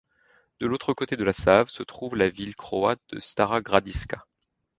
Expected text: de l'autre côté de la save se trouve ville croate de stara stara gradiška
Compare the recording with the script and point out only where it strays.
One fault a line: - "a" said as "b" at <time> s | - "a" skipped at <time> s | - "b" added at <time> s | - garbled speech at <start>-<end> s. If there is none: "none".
- "la" added at 2.1 s
- "stara" skipped at 3.6 s